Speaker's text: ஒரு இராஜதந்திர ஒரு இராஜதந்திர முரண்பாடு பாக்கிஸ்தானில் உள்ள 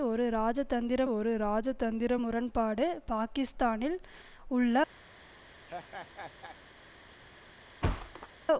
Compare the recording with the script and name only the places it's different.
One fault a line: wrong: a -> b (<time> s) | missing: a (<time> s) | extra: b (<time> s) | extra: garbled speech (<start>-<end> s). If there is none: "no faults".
no faults